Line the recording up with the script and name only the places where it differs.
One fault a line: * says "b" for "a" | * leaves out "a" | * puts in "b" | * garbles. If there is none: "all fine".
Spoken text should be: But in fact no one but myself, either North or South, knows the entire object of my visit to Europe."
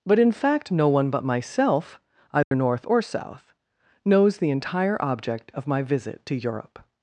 all fine